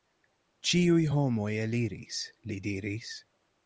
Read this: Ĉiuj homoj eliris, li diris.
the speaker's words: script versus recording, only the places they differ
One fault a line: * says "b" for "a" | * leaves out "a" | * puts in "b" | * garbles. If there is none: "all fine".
all fine